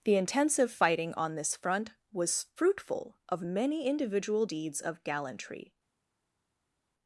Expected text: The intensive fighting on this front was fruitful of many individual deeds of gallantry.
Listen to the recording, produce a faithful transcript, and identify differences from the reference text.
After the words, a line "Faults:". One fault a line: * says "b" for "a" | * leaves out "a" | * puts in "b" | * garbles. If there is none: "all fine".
The intensive fighting on this front was fruitful of many individual deeds of gallantry.
Faults:
all fine